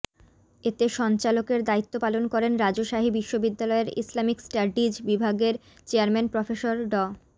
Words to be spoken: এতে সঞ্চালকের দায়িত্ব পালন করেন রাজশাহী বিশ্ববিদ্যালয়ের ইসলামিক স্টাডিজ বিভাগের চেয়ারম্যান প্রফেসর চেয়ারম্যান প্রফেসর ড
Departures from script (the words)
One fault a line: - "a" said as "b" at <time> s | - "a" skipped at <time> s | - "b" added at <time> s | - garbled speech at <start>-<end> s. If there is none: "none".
- "চেয়ারম্যান প্রফেসর" skipped at 6.7 s